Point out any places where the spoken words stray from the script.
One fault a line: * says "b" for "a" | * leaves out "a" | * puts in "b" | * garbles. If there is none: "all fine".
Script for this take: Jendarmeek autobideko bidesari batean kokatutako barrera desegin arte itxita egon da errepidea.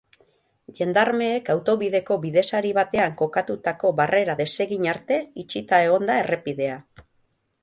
all fine